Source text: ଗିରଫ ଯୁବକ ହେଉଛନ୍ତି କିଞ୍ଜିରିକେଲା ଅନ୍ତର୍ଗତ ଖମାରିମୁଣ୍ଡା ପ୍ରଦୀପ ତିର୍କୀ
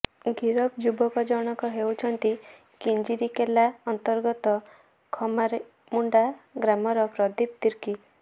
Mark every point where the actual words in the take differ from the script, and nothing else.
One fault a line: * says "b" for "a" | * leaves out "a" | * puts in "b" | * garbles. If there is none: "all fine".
* puts in "ଜଣକ"
* puts in "ଗ୍ରାମର"